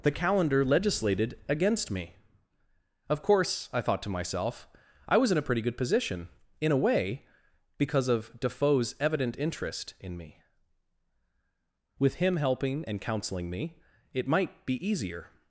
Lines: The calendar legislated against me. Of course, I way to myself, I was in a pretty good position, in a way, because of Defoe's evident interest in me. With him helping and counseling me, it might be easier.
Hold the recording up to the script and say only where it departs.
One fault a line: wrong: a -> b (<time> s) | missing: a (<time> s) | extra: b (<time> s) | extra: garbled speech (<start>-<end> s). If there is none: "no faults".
wrong: way -> thought (3.8 s)